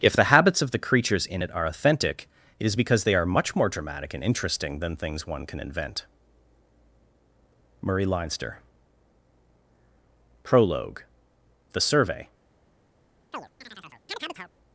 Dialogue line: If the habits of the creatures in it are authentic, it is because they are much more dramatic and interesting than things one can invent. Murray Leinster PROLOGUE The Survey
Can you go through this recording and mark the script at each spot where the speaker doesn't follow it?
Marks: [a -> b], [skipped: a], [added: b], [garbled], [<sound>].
If the habits of the creatures in it are authentic, it is because they are much more dramatic and interesting than things one can invent. Murray Leinster PROLOGUE The Survey [chirp]